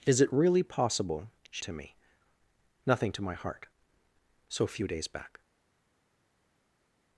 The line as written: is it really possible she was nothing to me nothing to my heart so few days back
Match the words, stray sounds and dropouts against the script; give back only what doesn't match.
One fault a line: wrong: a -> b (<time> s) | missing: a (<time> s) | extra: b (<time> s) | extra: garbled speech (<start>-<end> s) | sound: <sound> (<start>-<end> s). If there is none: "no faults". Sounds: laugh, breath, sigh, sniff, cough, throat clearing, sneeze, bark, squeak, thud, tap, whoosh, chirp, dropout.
missing: was nothing (1.6 s)